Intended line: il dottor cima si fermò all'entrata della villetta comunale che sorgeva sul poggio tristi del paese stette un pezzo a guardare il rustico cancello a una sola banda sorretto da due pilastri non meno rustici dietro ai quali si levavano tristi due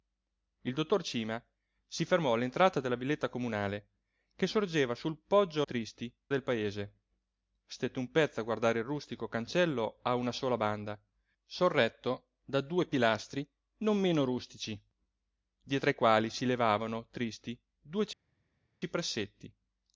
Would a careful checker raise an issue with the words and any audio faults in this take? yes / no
no